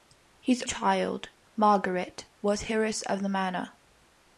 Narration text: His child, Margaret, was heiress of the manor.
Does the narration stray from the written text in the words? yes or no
no